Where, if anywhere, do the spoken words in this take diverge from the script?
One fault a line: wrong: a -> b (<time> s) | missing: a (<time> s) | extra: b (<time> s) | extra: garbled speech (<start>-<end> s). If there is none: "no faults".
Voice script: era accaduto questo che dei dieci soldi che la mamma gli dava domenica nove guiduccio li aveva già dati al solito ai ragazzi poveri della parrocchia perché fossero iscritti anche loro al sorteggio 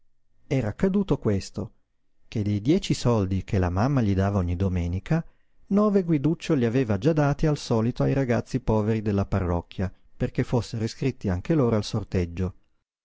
extra: ogni (4.4 s)